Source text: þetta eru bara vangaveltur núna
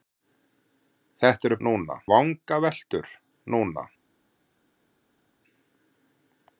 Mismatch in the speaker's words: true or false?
true